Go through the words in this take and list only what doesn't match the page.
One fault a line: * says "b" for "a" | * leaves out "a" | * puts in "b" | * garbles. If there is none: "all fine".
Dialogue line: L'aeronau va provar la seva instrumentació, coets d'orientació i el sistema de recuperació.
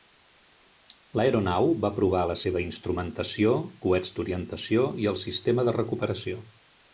all fine